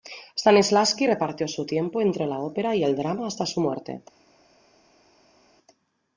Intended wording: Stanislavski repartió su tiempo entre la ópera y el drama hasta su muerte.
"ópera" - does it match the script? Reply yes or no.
yes